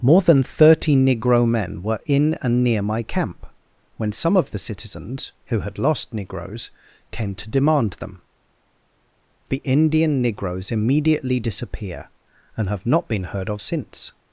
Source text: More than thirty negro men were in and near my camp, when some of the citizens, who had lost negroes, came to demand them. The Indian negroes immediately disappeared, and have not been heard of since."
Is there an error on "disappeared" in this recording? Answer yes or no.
yes